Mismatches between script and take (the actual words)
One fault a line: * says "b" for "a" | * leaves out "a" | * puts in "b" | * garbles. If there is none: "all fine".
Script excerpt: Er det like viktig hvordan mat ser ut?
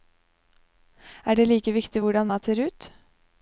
all fine